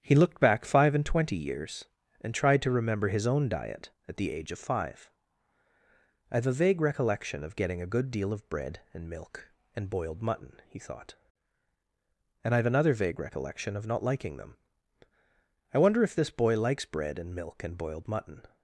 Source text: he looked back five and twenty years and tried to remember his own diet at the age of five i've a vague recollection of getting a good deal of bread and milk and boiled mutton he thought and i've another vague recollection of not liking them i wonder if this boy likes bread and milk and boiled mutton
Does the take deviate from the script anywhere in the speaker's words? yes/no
no